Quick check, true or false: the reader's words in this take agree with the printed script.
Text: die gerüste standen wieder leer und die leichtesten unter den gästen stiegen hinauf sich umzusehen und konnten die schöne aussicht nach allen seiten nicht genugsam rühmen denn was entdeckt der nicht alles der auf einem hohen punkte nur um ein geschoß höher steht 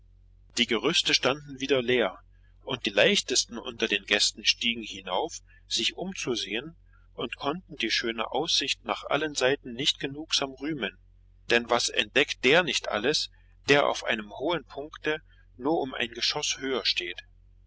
true